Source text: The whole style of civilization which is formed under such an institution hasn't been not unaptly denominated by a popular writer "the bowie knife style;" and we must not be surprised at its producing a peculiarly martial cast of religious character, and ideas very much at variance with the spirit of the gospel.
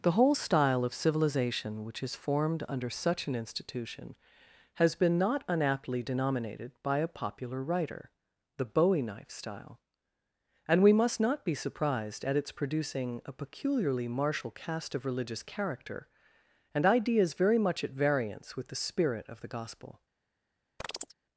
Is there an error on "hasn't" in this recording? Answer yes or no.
yes